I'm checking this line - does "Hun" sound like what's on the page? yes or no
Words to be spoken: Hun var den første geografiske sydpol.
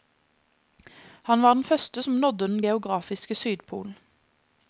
no